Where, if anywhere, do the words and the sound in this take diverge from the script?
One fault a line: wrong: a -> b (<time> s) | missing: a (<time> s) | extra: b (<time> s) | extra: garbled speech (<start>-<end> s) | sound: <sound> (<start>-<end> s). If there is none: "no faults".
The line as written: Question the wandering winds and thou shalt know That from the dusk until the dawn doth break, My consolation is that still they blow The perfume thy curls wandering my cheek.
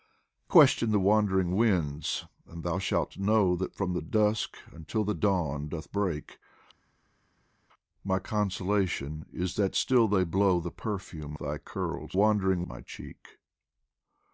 no faults